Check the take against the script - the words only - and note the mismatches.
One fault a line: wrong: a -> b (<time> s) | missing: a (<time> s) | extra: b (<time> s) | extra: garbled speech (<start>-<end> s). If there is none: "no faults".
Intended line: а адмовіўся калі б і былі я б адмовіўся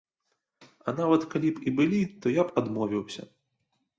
wrong: адмовіўся -> нават (1.0 s)
extra: то (2.2 s)